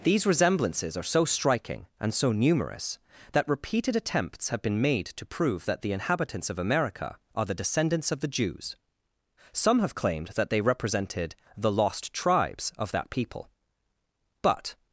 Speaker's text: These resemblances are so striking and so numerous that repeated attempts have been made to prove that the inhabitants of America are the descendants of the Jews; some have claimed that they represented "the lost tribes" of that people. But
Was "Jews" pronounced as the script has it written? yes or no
yes